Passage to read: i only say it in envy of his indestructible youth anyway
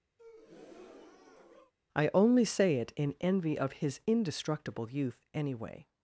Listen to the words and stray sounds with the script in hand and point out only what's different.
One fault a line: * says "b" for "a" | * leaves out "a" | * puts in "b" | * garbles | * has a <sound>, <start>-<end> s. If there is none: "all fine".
* has a breath, 0.2-1.7 s